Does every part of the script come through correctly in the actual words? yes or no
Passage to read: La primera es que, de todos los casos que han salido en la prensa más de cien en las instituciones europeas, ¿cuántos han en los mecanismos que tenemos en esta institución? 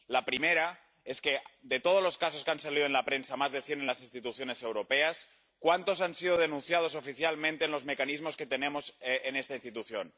no